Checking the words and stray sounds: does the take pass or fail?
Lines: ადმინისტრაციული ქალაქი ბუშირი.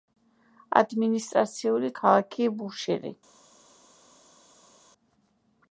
pass